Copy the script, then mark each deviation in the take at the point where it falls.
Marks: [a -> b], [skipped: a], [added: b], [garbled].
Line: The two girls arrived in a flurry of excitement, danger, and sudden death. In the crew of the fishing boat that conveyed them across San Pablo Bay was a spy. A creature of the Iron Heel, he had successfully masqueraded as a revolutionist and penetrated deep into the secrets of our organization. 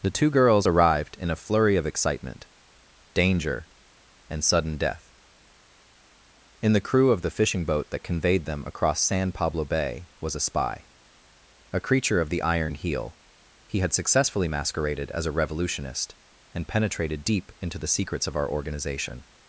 The two girls arrived in a flurry of excitement, danger, and sudden death. In the crew of the fishing boat that conveyed them across San Pablo Bay was a spy. A creature of the Iron Heel, he had successfully masqueraded as a revolutionist and penetrated deep into the secrets of our organization.